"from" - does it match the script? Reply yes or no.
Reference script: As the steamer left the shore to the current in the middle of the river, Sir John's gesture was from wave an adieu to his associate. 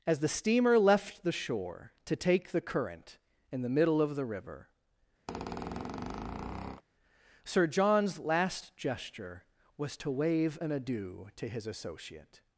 no